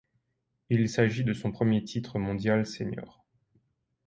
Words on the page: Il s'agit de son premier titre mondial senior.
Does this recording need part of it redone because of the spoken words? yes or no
no